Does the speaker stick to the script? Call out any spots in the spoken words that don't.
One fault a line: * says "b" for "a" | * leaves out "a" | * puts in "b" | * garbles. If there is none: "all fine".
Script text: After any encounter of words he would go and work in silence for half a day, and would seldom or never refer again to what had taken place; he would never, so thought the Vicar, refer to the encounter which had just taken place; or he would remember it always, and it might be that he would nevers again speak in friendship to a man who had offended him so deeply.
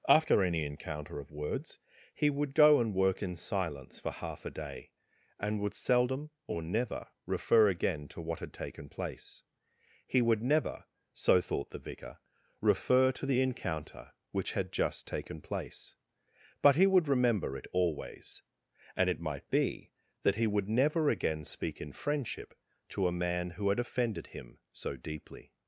* says "but" for "or"
* says "never" for "nevers"